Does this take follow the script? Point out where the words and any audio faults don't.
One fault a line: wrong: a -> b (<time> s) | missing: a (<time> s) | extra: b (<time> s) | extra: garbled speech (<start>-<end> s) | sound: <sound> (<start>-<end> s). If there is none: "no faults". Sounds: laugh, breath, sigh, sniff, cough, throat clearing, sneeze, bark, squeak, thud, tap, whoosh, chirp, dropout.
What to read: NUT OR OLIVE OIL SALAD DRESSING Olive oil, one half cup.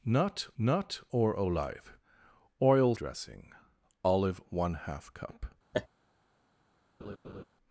extra: nut (0.6 s)
missing: SALAD (2.9 s)
missing: oil (4.4 s)
sound: laugh (5.7-5.9 s)
sound: laugh (7.0-7.4 s)